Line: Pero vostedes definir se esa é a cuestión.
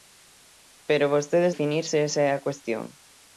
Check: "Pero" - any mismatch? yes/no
no